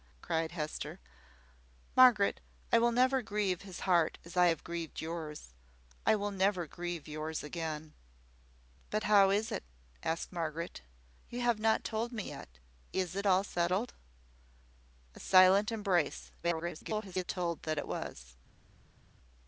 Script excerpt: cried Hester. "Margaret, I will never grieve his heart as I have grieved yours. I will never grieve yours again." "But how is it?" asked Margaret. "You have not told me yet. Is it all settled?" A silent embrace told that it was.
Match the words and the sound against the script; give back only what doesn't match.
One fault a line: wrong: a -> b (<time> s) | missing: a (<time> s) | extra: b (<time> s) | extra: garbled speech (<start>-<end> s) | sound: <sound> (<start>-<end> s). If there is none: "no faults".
extra: garbled speech (16.4-17.2 s)